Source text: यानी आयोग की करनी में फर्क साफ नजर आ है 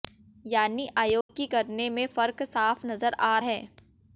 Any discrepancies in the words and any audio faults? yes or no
yes